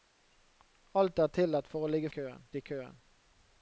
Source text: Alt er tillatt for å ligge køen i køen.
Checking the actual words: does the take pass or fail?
pass